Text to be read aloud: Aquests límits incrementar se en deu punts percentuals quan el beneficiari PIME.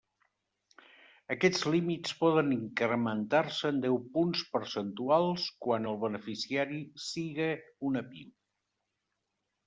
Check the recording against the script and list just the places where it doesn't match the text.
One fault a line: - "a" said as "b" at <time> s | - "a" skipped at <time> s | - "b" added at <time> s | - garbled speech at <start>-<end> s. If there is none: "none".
- "poden" added at 2.2 s
- "siga una" added at 7.1 s